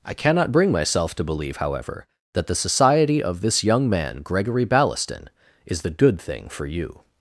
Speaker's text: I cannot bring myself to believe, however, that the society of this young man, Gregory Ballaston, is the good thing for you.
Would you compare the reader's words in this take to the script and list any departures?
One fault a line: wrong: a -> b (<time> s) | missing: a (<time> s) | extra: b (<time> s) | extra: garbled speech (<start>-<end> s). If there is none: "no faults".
no faults